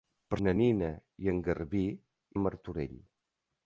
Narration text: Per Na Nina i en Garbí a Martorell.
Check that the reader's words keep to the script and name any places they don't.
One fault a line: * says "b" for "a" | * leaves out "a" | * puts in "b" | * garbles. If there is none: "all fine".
all fine